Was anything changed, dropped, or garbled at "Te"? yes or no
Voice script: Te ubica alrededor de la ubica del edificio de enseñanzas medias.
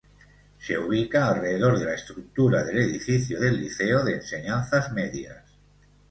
yes